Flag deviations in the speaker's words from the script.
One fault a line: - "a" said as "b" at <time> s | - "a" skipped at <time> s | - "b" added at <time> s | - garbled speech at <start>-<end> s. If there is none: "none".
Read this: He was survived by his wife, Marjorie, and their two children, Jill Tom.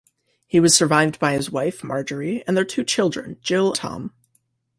none